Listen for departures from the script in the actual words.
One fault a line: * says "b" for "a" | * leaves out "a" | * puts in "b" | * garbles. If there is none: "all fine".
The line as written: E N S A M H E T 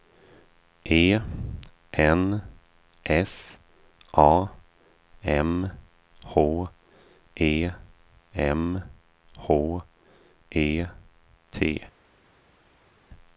* puts in "M H E"